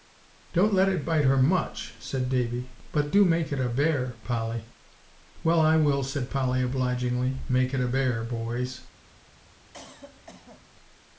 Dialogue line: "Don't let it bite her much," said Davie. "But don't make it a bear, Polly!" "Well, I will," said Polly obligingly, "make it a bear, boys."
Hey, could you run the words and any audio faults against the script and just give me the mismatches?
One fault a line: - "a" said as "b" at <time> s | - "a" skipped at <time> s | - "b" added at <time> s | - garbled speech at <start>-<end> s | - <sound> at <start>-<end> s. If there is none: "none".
- "don't" said as "do" at 3.1 s
- cough at 9.7-10.7 s